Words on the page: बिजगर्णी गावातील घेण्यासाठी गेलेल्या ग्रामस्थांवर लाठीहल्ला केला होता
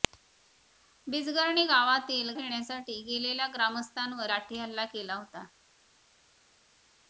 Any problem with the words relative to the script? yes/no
no